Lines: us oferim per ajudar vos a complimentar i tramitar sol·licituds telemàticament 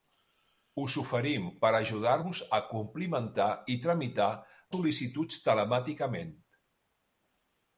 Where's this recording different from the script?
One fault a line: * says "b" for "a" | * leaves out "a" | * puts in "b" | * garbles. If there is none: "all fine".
all fine